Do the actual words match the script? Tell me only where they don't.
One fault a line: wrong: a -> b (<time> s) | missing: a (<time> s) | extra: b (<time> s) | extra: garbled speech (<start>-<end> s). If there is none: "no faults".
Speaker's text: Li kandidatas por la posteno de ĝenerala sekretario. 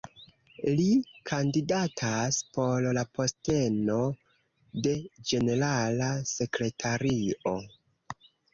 no faults